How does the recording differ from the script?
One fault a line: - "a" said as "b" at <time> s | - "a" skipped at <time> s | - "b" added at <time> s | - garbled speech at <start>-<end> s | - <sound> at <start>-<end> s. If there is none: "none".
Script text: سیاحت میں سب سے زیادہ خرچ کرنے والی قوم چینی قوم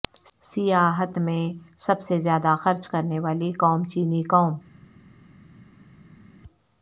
none